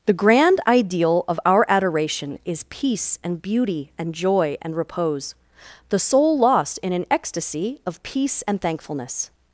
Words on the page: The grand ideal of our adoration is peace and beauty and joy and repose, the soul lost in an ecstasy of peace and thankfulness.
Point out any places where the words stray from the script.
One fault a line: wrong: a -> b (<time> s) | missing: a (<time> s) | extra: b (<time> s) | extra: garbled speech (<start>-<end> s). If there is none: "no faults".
no faults